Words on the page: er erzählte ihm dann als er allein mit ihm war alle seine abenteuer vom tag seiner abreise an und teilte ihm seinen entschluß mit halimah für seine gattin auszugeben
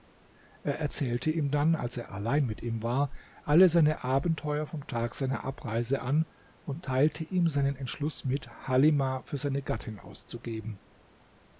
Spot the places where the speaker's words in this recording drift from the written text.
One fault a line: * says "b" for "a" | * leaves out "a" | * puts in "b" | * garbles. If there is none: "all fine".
all fine